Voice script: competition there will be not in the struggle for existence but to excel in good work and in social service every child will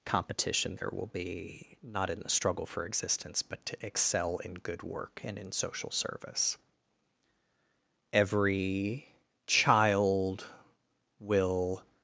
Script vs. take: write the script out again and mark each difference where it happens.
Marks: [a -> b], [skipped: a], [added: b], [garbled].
competition there will be not in the struggle for existence but to excel in good work and in social service every child will